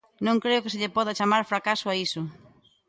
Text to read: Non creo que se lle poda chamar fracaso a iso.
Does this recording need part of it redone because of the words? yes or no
no